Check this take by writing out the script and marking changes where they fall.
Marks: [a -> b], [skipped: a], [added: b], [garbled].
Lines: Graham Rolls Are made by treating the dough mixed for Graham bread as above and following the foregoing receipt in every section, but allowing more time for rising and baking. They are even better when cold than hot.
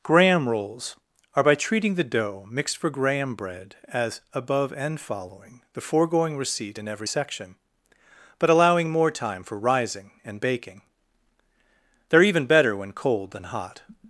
Graham Rolls Are [skipped: made] by treating the dough mixed for Graham bread as above and following the foregoing receipt in every section, but allowing more time for rising and baking. They are even better when cold than hot.